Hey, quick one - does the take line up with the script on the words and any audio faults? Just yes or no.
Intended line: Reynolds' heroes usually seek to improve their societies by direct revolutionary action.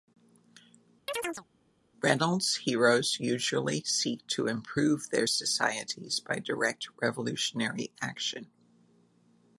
no